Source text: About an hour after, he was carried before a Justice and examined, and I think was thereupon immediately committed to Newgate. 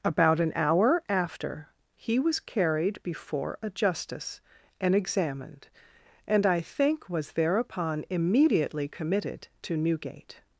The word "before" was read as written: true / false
true